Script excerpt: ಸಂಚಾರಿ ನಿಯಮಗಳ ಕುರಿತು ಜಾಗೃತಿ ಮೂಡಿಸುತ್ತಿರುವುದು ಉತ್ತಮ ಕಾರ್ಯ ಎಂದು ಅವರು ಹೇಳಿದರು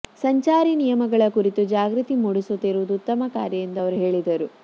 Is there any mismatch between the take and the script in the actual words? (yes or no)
no